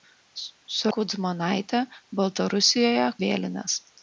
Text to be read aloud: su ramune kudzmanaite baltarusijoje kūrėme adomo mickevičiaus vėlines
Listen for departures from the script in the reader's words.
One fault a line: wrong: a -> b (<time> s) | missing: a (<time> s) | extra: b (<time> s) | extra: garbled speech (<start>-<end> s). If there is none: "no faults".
missing: ramune (0.9 s)
missing: kūrėme adomo mickevičiaus (3.1 s)